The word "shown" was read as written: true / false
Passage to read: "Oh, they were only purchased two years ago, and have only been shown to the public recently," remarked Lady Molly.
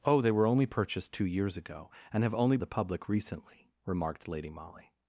false